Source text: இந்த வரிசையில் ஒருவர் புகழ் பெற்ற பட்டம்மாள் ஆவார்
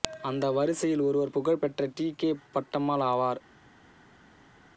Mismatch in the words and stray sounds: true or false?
true